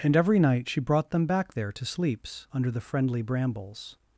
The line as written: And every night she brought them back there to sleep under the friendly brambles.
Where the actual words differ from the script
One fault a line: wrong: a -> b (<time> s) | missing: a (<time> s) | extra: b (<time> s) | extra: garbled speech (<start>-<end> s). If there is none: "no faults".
wrong: sleep -> sleeps (1.9 s)